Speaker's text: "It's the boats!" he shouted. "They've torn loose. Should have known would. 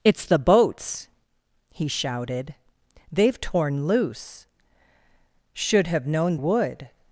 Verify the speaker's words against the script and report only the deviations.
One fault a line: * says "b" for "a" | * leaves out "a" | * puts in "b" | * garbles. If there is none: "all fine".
all fine